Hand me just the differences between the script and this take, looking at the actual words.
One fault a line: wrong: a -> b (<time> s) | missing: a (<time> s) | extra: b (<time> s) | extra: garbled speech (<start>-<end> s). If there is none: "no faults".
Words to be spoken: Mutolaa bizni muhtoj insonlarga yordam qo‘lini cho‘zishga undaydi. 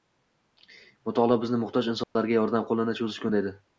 no faults